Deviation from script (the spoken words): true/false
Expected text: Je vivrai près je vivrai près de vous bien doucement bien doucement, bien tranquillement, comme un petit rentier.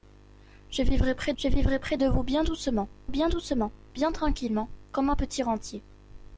false